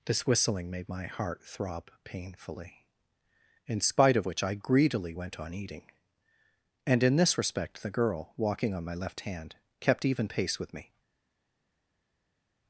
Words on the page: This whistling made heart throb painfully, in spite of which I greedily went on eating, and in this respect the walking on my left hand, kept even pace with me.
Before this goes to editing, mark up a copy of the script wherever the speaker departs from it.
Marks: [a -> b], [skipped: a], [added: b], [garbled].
This whistling made [added: my] heart throb painfully, in spite of which I greedily went on eating, and in this respect the [added: girl] walking on my left hand, kept even pace with me.